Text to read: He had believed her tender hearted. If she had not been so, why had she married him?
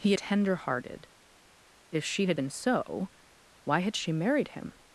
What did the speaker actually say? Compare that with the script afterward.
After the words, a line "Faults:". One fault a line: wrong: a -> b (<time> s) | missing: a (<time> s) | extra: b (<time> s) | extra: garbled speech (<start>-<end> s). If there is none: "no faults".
He tender hearted. If she had been so, why had she married him?
Faults:
missing: had believed her (0.1 s)
missing: not (2.4 s)